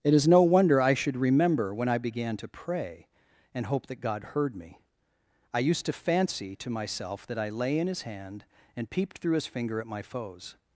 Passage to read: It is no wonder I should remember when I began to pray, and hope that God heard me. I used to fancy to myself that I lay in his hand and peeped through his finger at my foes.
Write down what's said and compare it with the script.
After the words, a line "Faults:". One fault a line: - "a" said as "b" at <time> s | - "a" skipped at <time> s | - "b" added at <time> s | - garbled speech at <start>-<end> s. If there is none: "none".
It is no wonder I should remember when I began to pray, and hope that God heard me. I used to fancy to myself that I lay in his hand and peeped through his finger at my foes.
Faults:
none